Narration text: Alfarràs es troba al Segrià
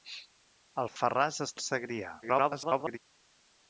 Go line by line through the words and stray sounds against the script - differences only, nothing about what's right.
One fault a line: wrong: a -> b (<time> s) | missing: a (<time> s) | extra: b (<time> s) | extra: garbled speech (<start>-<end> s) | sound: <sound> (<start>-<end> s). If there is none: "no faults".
sound: dropout (0.9-1.0 s)
missing: troba (1.5 s)
extra: garbled speech (2.2-3.0 s)